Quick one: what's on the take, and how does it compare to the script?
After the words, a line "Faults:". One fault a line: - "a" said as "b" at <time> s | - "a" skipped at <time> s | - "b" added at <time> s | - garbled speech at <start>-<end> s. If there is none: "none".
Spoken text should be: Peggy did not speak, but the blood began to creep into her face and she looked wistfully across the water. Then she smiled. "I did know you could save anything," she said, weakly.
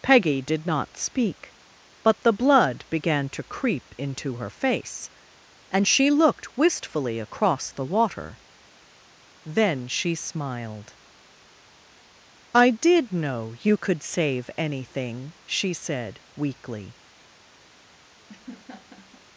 Peggy did not speak, but the blood began to creep into her face and she looked wistfully across the water. Then she smiled. "I did know you could save anything," she said, weakly.
Faults:
none